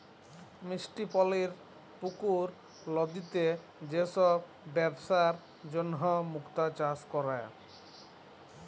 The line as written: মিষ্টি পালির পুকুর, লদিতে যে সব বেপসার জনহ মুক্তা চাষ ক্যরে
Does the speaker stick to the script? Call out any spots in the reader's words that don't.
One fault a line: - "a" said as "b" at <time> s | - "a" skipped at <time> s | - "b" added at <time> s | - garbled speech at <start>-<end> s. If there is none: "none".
none